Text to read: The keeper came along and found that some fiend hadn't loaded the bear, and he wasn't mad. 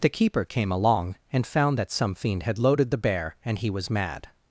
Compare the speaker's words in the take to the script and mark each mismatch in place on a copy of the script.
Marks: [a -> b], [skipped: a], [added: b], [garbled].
The keeper came along and found that some fiend [hadn't -> had] loaded the bear, and he [wasn't -> was] mad.